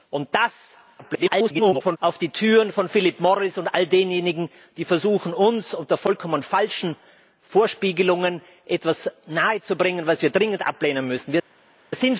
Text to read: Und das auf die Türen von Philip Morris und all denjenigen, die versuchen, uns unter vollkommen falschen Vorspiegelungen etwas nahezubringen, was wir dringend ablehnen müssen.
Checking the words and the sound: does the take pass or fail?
fail